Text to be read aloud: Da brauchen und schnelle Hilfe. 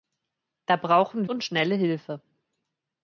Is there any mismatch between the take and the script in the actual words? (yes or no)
no